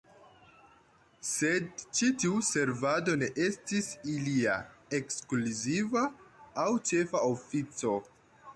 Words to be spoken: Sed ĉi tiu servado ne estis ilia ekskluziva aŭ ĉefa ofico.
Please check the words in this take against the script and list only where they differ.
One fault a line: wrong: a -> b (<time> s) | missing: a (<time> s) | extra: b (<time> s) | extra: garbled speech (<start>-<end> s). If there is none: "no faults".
no faults